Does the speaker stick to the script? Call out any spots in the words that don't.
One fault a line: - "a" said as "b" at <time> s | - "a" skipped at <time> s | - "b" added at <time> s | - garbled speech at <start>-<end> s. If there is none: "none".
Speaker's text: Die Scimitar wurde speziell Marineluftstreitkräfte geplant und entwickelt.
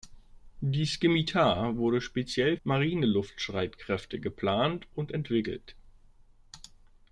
none